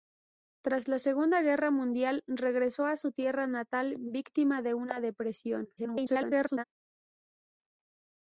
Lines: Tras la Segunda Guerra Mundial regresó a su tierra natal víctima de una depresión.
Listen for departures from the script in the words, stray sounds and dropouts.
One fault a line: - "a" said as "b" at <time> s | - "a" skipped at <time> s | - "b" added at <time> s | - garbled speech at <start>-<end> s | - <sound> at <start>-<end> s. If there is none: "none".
- garbled speech at 5.8-6.6 s